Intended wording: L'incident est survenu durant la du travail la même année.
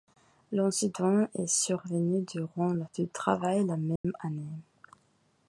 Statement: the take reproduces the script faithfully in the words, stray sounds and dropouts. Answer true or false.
false